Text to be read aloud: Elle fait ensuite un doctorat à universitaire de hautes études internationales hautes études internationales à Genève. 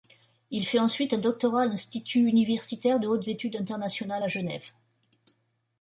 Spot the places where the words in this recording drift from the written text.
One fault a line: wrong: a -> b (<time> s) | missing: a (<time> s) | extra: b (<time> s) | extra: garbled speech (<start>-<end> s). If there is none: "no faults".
wrong: Elle -> Il (0.5 s)
extra: l'Institut (1.7 s)
missing: hautes études internationales (4.2 s)